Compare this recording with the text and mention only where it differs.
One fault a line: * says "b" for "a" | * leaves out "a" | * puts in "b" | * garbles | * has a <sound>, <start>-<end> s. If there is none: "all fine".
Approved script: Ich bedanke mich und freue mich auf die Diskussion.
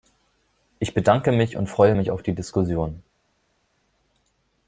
all fine